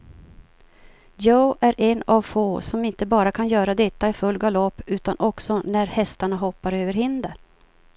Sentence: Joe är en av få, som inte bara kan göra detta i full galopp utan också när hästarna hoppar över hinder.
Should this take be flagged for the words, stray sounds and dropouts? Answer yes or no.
no